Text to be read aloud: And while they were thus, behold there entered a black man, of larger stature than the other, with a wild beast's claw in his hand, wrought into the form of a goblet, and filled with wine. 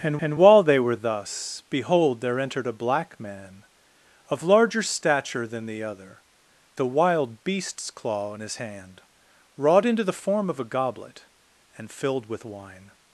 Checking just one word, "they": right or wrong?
right